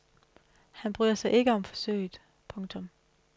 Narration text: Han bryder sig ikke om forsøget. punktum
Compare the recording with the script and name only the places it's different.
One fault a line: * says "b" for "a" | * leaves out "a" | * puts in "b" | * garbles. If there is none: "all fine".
all fine